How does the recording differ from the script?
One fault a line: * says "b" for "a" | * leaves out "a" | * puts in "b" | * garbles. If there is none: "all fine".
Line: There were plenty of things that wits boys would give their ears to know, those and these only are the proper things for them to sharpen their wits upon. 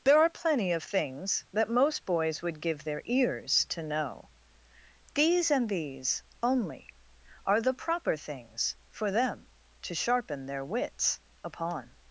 * says "are" for "were"
* says "most" for "wits"
* says "these" for "those"